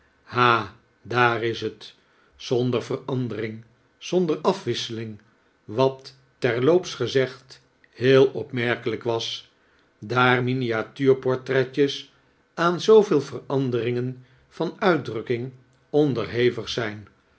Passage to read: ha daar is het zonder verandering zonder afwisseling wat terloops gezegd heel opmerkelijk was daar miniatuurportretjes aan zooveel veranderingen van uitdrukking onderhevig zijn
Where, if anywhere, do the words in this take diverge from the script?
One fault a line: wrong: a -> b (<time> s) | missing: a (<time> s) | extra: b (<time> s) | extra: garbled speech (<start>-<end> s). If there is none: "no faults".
no faults